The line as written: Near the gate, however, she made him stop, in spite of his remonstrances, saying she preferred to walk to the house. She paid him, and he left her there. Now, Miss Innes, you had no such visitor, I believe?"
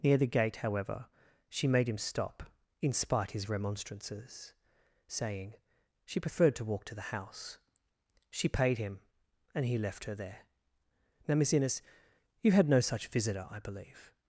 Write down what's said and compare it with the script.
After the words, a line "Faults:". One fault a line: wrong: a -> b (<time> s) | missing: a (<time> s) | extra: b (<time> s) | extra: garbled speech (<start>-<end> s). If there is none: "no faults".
Near the gate, however, she made him stop, in spite his remonstrances, saying she preferred to walk to the house. She paid him, and he left her there. Now, Miss Innes, you had no such visitor, I believe?"
Faults:
missing: of (3.3 s)